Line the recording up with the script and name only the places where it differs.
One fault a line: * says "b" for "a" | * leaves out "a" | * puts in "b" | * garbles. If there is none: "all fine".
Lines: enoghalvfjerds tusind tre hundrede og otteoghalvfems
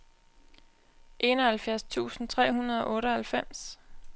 all fine